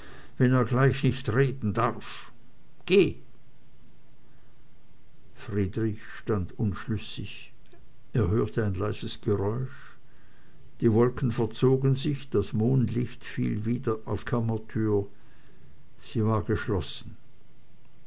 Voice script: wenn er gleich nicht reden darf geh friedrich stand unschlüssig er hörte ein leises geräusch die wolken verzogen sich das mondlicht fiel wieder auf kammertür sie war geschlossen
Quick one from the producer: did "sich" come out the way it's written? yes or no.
yes